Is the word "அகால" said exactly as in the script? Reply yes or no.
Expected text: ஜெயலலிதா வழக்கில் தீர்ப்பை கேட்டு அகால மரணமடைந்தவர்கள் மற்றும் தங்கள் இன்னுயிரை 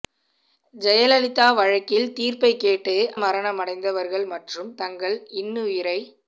no